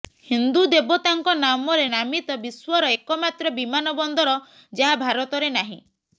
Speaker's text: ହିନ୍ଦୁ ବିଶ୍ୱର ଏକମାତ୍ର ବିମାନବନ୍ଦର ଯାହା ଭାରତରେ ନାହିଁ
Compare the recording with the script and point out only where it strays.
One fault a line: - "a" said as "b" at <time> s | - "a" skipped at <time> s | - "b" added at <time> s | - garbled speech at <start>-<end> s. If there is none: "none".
- "ଦେବତାଙ୍କ ନାମରେ ନାମିତ" added at 0.7 s